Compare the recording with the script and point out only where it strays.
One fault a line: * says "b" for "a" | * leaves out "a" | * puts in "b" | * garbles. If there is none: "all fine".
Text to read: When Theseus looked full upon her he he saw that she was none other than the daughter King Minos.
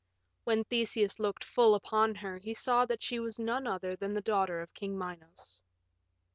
* leaves out "he"
* puts in "of"